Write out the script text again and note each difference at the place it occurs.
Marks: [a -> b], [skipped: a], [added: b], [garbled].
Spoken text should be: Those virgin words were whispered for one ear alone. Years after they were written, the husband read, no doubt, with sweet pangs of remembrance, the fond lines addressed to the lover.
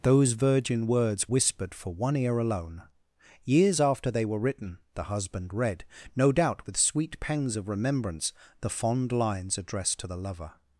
Those virgin words [skipped: were] whispered for one ear alone. Years after they were written, the husband read, no doubt, with sweet pangs of remembrance, the fond lines addressed to the lover.